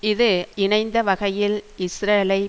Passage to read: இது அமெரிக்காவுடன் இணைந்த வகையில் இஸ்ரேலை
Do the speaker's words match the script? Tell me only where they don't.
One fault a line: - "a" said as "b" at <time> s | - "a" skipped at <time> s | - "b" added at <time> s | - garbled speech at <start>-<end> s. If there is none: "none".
- "அமெரிக்காவுடன்" skipped at 0.3 s